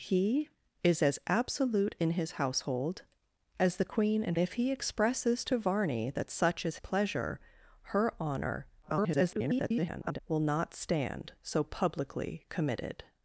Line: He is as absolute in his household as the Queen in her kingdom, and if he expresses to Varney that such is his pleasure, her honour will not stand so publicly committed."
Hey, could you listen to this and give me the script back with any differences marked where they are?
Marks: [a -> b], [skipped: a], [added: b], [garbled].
He is as absolute in his household as the Queen in [skipped: her kingdom, and] if he expresses to Varney that such is [skipped: his] pleasure, her honour [garbled] will not stand so publicly committed."